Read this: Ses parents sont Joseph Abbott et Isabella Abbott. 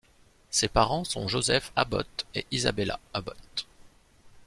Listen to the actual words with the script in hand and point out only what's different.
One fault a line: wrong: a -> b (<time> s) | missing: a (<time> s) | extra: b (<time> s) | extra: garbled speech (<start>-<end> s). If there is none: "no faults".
no faults